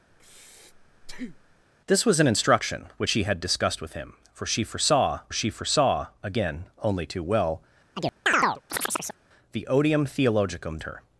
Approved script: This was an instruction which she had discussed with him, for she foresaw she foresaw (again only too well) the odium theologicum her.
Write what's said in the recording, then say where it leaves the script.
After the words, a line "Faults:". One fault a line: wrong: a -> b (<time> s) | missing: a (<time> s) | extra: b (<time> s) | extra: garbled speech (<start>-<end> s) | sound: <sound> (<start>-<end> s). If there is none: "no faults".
This was an instruction which she had discussed with him, for she foresaw she foresaw (again only too well) the odium theologicum her.
Faults:
sound: breath (0.1-1.6 s)
sound: chirp (7.9-9.2 s)